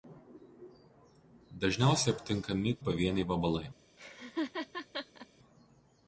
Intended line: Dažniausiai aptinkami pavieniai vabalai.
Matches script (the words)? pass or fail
pass